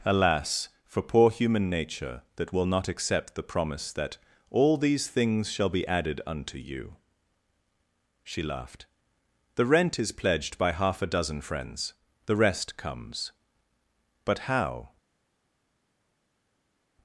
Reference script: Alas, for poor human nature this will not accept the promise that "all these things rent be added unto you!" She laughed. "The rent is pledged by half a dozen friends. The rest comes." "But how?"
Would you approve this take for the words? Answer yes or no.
no